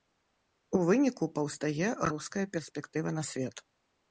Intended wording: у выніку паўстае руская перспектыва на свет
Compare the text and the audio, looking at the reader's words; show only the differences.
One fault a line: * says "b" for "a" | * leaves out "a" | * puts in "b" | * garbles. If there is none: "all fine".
all fine